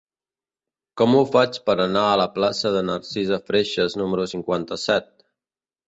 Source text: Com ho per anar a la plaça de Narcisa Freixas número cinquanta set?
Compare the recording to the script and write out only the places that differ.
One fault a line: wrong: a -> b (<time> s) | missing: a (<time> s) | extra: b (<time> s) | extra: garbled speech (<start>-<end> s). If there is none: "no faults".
extra: faig (1.3 s)